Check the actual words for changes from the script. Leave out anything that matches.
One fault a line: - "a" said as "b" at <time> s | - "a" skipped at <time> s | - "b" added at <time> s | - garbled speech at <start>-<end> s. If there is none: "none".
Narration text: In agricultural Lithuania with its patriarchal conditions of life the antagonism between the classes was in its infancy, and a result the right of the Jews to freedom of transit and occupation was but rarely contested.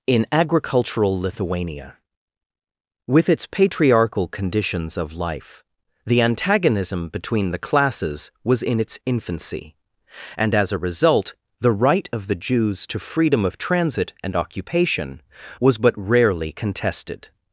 - "as" added at 10.6 s